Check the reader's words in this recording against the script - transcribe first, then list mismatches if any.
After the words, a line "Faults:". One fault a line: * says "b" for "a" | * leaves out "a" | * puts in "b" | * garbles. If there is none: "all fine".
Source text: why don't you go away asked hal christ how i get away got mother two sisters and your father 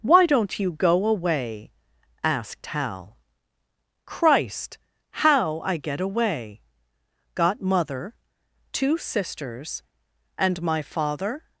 why don't you go away asked hal christ how i get away got mother two sisters and my father
Faults:
* says "my" for "your"